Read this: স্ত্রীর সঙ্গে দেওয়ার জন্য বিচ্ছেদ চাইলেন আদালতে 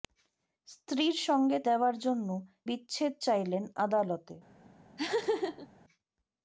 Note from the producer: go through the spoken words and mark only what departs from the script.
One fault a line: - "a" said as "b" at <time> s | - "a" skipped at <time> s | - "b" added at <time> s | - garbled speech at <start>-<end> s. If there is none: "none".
none